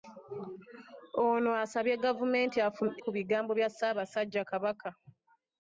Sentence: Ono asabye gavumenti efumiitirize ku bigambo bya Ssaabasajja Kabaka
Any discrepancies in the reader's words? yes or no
yes